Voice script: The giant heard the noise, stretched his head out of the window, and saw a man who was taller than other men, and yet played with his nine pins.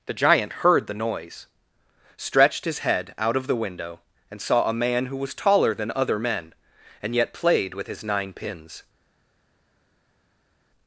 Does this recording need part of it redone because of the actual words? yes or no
no